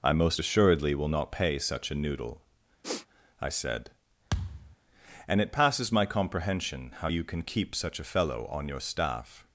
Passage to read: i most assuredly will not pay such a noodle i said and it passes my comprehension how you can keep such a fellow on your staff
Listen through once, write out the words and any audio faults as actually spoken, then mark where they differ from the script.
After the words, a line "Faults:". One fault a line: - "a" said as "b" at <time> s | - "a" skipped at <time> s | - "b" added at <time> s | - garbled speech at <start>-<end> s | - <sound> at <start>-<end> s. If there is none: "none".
i most assuredly will not pay such a noodle i said and it passes my comprehension how you can keep such a fellow on your staff
Faults:
- sniff at 2.8-3.1 s
- thud at 4.3-4.8 s